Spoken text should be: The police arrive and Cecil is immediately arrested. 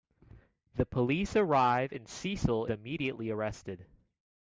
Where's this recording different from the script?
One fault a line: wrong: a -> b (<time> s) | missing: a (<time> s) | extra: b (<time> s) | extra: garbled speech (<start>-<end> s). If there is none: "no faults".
missing: is (2.7 s)